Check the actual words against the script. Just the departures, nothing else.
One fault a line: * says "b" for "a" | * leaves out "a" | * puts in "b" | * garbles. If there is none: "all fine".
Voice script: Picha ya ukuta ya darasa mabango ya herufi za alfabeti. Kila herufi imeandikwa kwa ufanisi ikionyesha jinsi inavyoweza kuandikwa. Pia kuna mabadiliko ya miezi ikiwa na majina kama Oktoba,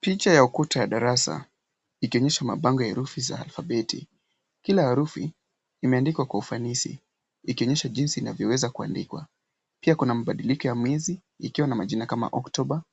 * puts in "ikionyesha"